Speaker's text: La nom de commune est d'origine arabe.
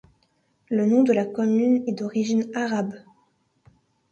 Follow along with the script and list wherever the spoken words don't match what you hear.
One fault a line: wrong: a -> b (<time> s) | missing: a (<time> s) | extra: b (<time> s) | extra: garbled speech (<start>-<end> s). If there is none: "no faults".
wrong: La -> Le (0.7 s)
extra: la (1.1 s)